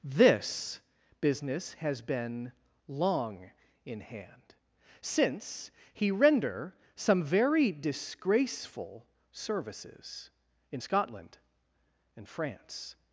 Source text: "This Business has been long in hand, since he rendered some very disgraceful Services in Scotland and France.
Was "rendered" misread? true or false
true